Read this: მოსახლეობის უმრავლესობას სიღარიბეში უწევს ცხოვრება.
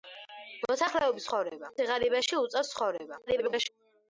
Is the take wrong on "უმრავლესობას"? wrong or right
wrong